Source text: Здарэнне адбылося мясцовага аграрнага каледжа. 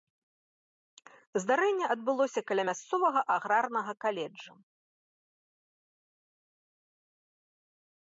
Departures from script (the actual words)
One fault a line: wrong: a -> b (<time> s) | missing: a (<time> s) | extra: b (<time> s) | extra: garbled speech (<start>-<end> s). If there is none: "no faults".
extra: каля (2.5 s)